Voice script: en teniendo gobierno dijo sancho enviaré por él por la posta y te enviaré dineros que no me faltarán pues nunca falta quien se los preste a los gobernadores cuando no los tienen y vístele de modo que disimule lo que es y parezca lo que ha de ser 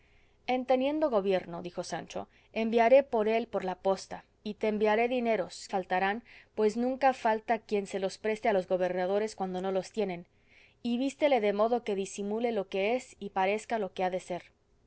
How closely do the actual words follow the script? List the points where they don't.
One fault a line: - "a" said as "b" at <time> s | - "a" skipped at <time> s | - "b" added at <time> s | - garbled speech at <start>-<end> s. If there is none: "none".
- "que no me" skipped at 5.7 s